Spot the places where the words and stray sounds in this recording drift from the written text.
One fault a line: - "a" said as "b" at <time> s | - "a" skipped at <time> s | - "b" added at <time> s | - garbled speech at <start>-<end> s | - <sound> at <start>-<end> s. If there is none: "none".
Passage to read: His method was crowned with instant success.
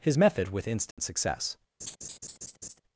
- "was crowned" skipped at 0.5 s
- dropout at 0.9-1.0 s
- laugh at 1.8-2.8 s